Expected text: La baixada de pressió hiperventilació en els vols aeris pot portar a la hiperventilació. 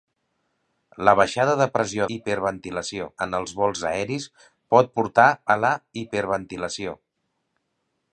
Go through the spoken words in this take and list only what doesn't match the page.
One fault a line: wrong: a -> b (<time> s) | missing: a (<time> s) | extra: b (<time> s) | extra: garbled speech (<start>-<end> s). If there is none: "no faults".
no faults